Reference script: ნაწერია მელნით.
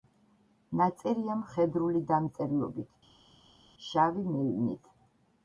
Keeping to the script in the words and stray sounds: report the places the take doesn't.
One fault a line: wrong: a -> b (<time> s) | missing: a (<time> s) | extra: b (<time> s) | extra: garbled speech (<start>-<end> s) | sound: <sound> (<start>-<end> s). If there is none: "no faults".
extra: მხედრული დამწერლობით შავი (1.4 s)